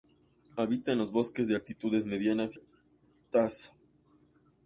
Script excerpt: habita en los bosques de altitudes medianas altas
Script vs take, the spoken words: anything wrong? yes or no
no